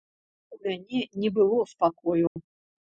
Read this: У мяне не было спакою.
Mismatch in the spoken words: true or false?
false